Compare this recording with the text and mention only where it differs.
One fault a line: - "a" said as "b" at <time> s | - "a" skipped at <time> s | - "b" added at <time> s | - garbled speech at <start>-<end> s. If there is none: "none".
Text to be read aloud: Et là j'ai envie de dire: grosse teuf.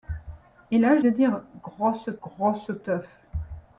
- "j'ai envie" skipped at 1.0 s
- "grosse" added at 2.2 s